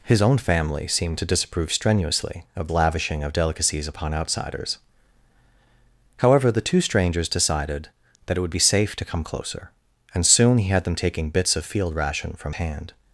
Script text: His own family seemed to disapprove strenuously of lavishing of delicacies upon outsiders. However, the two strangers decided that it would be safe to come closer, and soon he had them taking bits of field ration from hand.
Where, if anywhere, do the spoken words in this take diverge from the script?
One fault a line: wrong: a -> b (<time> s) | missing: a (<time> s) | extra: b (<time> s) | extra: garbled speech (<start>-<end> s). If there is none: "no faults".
no faults